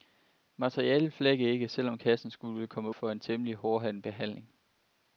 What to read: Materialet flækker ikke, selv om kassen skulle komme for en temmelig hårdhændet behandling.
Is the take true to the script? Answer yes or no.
yes